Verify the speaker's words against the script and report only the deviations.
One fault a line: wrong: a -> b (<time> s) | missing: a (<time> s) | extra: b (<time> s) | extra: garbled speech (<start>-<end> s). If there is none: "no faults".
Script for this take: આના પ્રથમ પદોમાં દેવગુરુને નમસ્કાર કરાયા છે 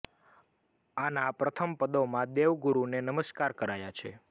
no faults